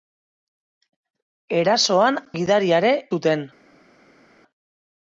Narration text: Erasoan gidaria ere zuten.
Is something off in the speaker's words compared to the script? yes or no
no